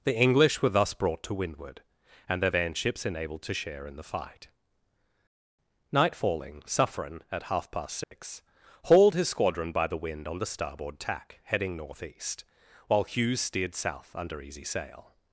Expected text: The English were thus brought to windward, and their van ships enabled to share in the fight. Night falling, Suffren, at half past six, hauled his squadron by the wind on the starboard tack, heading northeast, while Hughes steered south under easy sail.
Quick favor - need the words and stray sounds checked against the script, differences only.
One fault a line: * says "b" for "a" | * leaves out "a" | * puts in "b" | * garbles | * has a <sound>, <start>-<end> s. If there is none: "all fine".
* has a dropout, 8.0-8.1 s